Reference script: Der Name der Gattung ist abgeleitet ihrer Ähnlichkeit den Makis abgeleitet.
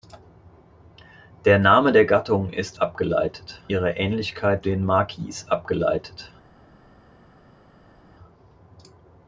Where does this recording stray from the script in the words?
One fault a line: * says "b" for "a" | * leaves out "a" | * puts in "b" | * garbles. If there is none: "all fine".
all fine